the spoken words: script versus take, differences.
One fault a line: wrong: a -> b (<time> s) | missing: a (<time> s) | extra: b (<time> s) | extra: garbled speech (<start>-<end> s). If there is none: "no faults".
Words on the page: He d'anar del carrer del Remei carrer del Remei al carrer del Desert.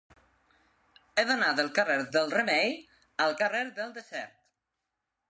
missing: carrer del Remei (2.7 s)